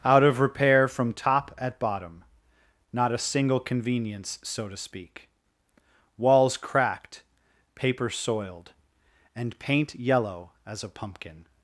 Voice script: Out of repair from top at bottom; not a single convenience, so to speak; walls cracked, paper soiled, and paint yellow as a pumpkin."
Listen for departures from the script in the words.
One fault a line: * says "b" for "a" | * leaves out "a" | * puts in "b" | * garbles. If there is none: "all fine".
all fine